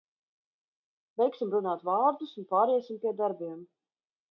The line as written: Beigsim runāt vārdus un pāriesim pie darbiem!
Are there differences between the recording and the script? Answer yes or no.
no